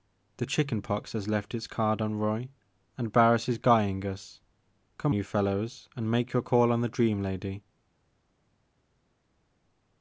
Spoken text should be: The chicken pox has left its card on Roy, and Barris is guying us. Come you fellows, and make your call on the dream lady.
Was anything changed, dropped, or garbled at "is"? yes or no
no